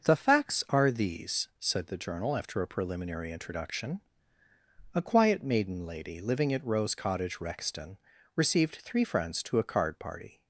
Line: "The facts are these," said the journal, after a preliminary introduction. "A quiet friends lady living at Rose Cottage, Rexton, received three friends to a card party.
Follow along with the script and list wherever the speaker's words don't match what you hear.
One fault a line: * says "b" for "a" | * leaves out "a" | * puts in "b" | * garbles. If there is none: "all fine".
* says "maiden" for "friends"